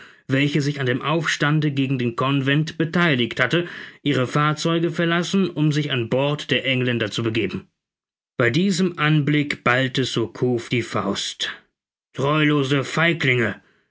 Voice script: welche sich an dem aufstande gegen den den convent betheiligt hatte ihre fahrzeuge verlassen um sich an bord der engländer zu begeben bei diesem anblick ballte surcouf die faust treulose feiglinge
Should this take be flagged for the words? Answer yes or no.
yes